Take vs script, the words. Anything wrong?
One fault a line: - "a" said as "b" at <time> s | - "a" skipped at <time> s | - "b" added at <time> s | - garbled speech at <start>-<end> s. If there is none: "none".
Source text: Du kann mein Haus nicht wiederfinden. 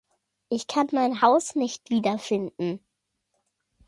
- "Du" said as "Ich" at 0.5 s